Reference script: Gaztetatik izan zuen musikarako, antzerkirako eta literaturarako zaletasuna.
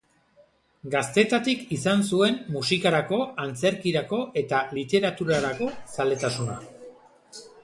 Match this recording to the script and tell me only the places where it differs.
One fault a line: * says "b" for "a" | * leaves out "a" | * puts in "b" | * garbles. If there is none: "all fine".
all fine